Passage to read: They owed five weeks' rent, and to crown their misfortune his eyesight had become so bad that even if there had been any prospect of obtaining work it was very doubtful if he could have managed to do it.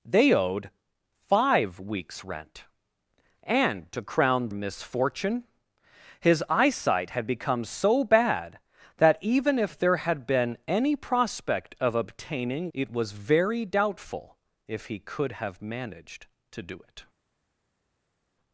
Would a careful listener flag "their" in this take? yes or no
yes